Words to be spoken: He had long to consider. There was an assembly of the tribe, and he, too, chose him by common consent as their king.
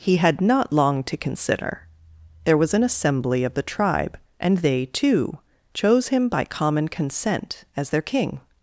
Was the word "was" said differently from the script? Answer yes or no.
no